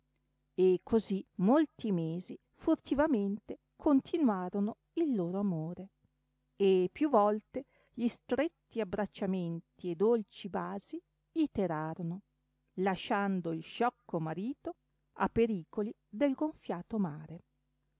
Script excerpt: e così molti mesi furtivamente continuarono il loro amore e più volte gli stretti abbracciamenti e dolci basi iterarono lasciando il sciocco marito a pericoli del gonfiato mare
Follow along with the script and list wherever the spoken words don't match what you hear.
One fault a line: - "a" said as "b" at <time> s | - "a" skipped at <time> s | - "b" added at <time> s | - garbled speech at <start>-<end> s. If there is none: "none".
none